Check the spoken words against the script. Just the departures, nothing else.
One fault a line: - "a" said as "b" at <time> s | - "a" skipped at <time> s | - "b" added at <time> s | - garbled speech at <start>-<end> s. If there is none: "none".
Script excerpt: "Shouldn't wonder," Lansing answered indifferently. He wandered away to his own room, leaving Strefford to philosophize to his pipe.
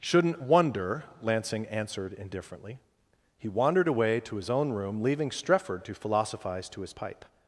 none